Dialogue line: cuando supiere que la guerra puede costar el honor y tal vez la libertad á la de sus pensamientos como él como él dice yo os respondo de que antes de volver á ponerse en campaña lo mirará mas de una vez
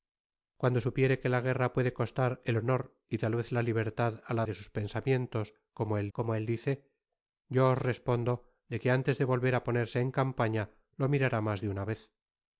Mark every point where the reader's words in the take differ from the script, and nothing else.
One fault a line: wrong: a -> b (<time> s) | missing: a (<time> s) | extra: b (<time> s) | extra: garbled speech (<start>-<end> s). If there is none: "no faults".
no faults